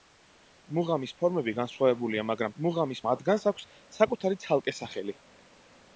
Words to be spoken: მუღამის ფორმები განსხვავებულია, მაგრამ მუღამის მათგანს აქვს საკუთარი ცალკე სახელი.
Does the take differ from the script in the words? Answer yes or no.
no